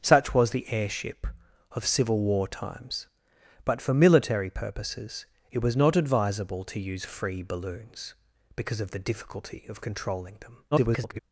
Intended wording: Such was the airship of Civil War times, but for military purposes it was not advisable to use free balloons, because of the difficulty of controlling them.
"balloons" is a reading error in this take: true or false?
false